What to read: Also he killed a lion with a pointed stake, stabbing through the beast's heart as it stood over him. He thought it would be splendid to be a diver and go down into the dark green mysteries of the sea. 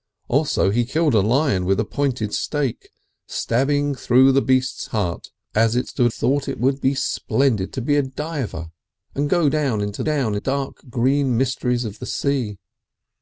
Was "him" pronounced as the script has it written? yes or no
no